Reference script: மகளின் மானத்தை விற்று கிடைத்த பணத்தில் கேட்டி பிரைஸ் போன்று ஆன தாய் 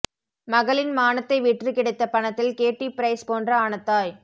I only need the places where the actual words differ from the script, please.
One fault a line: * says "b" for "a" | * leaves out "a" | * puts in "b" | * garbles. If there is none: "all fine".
all fine